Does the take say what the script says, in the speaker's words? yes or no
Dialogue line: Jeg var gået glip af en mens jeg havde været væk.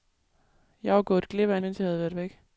yes